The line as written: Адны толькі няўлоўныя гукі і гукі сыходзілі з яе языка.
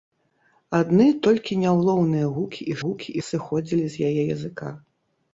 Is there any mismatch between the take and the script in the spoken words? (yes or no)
no